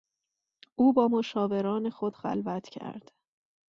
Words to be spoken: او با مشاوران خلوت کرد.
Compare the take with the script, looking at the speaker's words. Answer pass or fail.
fail